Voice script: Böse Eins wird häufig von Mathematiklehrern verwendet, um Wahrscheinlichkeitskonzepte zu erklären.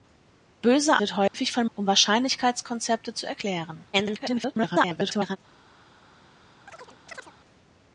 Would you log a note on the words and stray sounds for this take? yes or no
yes